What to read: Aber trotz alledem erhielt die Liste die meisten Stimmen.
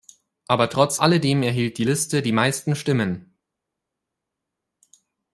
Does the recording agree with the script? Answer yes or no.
yes